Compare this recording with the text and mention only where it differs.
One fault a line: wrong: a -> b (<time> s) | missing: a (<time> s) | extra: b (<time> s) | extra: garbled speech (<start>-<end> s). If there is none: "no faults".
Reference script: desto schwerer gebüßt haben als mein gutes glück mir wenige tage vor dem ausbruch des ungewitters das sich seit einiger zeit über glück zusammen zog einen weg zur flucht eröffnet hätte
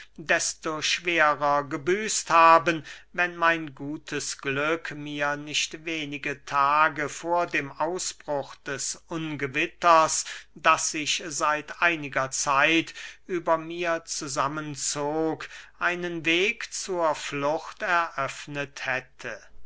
wrong: als -> wenn (3.1 s)
extra: nicht (5.4 s)
wrong: glück -> mir (13.6 s)